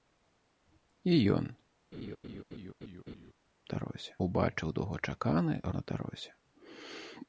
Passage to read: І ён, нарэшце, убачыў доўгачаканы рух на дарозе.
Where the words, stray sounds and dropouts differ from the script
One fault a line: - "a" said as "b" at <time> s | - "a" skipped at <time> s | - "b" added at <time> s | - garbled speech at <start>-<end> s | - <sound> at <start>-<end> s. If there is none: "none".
- laugh at 1.9-3.3 s
- "нарэшце" said as "дарозе" at 3.8 s
- "рух" skipped at 5.5 s